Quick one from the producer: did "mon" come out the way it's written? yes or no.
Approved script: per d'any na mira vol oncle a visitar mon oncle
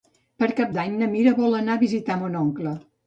yes